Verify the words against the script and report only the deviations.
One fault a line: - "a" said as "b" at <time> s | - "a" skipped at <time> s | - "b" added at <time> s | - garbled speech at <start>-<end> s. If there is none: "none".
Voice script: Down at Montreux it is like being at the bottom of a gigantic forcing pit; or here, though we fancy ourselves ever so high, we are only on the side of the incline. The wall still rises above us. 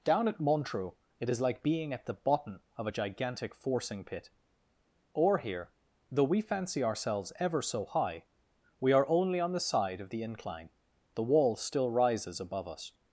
none